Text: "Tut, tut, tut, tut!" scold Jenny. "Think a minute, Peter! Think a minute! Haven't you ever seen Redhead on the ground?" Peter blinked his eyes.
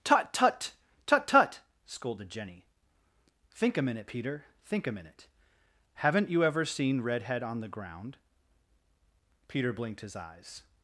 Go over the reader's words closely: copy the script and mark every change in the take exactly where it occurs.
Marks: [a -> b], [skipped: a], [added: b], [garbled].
"Tut, tut, tut, tut!" [scold -> scolded] Jenny. "Think a minute, Peter! Think a minute! Haven't you ever seen Redhead on the ground?" Peter blinked his eyes.